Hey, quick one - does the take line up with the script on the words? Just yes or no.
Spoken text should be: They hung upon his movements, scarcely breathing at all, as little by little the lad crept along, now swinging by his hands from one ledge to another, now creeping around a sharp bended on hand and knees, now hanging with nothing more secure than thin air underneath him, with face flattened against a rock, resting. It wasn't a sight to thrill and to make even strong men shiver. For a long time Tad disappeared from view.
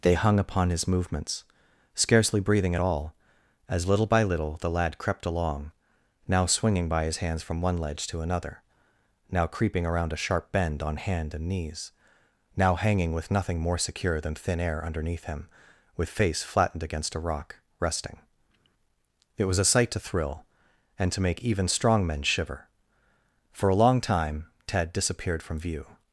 no